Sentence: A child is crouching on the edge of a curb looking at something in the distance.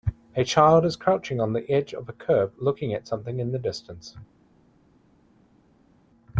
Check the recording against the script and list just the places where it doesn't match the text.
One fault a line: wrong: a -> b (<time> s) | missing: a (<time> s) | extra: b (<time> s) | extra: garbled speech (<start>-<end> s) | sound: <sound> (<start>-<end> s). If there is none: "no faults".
no faults